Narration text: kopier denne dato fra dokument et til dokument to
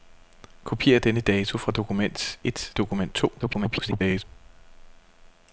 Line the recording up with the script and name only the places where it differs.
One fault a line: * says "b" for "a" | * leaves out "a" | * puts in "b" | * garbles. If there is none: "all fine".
* leaves out "til"
* garbles